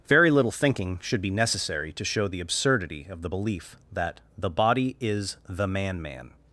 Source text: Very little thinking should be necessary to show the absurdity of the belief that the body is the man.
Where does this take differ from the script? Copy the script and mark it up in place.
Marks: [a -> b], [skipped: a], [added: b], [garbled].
Very little thinking should be necessary to show the absurdity of the belief that the body is the man. [added: man]